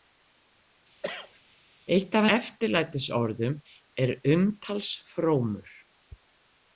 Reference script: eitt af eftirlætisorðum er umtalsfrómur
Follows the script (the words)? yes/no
yes